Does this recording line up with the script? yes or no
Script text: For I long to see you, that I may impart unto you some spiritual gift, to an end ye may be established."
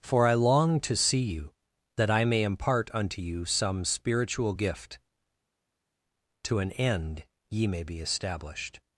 yes